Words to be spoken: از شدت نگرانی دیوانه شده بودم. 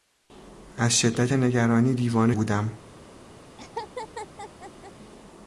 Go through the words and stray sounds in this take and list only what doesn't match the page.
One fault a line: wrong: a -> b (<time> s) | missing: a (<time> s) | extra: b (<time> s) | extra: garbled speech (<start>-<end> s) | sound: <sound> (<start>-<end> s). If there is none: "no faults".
missing: شده (2.3 s)
sound: laugh (3.6-4.9 s)